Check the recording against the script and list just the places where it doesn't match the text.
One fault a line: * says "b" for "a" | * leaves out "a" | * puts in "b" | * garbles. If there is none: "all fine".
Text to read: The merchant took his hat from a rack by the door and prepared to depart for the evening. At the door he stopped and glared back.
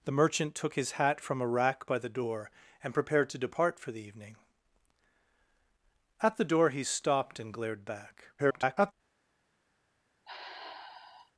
* garbles